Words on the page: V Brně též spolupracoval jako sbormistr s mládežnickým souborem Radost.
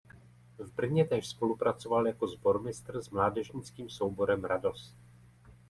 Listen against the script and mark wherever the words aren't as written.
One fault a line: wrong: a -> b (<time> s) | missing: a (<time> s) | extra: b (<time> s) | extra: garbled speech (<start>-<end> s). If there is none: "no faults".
no faults